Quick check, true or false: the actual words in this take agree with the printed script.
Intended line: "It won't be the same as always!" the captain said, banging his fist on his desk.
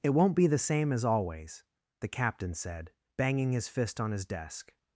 true